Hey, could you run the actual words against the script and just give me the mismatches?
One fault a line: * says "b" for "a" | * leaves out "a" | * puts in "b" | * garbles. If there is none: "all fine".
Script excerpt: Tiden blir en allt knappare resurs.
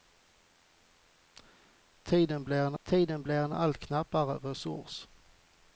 * puts in "tiden blir en"